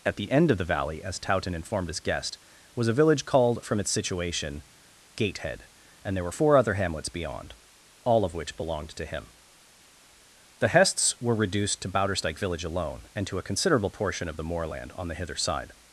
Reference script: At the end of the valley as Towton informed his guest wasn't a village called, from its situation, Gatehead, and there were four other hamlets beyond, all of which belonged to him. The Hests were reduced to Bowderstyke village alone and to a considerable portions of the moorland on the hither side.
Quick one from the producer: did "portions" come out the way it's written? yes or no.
no